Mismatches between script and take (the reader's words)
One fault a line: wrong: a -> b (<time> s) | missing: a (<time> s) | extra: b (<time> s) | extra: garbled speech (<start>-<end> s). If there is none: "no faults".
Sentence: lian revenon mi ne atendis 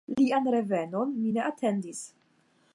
no faults